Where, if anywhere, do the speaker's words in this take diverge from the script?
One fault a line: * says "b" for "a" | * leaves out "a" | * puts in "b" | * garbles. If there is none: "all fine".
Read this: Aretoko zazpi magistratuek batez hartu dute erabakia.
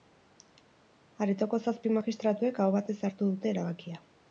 * puts in "aho"